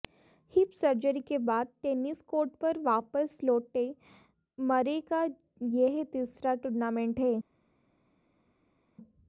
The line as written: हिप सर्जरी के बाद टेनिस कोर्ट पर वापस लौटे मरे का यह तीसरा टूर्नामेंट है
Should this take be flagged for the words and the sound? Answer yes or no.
no